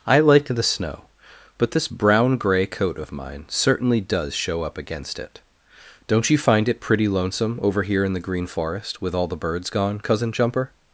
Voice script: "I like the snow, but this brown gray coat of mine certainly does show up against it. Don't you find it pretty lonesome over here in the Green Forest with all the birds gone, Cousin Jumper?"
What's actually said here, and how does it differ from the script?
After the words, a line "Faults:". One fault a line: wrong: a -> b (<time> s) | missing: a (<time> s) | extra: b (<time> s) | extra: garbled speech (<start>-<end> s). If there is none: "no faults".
"I like the snow, but this brown gray coat of mine certainly does show up against it. Don't you find it pretty lonesome over here in the Green Forest with all the birds gone, Cousin Jumper?"
Faults:
no faults